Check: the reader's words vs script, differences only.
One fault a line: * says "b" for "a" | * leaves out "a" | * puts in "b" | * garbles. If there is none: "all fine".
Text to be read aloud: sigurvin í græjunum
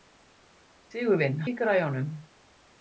all fine